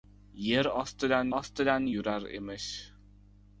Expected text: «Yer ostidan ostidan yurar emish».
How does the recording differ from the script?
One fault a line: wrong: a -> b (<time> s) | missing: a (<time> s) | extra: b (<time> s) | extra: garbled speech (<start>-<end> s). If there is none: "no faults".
no faults